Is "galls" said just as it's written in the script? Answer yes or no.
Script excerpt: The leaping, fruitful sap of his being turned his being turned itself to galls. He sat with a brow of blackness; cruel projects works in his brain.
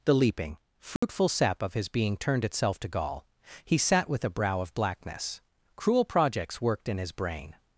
no